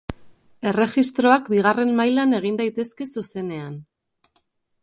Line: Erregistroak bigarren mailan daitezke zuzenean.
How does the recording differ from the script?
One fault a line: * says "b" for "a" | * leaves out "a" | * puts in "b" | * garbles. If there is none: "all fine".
* puts in "egin"